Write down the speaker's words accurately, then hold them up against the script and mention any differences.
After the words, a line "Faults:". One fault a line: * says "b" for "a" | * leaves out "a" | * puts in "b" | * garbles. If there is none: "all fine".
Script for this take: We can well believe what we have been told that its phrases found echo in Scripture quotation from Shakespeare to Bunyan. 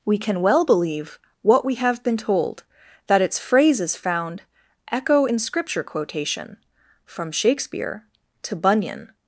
We can well believe what we have been told that its phrases found echo in Scripture quotation from Shakespeare to Bunyan.
Faults:
all fine